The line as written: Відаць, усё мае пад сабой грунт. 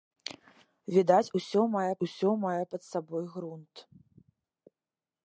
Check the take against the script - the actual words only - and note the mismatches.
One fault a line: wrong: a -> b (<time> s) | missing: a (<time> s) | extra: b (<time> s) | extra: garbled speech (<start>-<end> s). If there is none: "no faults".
extra: усё мае (2.1 s)